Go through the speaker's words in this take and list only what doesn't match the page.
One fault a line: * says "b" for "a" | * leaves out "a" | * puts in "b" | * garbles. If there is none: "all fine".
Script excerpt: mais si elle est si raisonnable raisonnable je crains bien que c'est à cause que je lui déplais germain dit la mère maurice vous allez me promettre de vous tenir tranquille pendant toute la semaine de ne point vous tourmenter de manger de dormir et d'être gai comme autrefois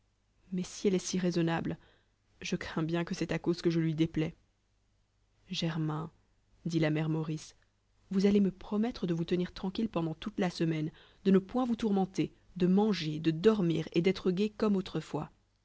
* leaves out "raisonnable"